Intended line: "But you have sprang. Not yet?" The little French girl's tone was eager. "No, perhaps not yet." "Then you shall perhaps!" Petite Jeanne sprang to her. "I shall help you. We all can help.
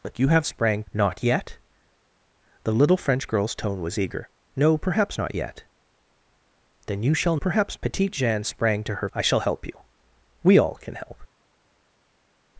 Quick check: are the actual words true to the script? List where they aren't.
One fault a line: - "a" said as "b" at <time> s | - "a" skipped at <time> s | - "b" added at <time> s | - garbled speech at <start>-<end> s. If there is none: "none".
none